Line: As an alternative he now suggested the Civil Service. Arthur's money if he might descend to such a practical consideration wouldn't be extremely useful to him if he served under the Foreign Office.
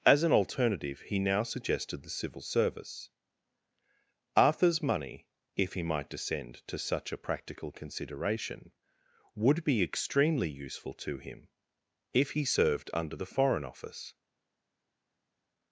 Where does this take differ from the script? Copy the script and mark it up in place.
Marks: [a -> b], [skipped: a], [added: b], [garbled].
As an alternative he now suggested the Civil Service. Arthur's money if he might descend to such a practical consideration [wouldn't -> would] be extremely useful to him if he served under the Foreign Office.